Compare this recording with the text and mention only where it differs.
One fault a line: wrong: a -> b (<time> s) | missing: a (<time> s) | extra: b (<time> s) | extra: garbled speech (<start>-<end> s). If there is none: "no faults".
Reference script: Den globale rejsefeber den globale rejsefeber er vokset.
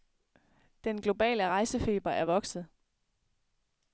missing: den globale rejsefeber (2.1 s)